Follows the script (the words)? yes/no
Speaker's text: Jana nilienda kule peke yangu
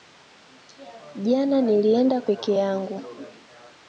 no